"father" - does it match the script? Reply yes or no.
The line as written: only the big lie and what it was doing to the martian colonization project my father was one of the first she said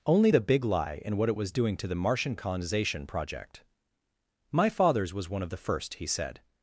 no